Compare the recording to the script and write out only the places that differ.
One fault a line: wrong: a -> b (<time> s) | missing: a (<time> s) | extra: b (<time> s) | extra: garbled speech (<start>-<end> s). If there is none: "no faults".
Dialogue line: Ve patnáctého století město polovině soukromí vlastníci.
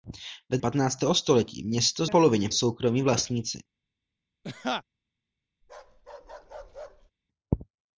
no faults